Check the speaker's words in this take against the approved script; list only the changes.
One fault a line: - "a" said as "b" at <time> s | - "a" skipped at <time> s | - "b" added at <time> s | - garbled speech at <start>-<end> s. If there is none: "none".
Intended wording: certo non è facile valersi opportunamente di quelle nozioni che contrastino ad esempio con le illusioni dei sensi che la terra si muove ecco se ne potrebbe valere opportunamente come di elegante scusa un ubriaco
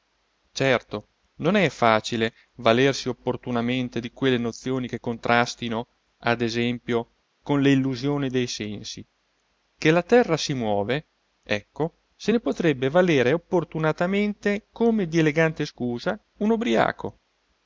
none